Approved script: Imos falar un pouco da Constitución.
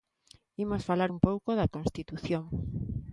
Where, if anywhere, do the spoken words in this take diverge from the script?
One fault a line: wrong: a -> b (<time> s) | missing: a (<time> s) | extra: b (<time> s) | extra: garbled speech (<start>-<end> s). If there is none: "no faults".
no faults